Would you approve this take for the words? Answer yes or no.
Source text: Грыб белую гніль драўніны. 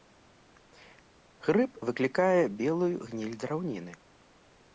no